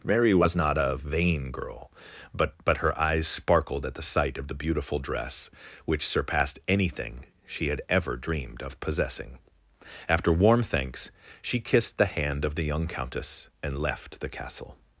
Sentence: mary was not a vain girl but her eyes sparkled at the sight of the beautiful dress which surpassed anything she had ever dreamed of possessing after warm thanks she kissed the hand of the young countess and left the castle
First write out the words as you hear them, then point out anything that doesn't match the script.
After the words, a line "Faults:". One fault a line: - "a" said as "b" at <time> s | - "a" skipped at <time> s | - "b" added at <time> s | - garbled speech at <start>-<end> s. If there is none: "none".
mary was not a vain girl but but her eyes sparkled at the sight of the beautiful dress which surpassed anything she had ever dreamed of possessing after warm thanks she kissed the hand of the young countess and left the castle
Faults:
- "but" added at 2.6 s